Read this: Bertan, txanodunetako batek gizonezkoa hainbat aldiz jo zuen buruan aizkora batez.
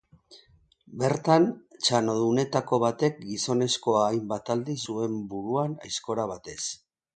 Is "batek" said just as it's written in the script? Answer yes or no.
yes